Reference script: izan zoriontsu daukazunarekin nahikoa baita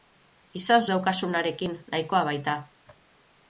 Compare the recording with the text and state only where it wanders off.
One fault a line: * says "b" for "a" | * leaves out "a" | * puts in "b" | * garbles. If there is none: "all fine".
* leaves out "zoriontsu"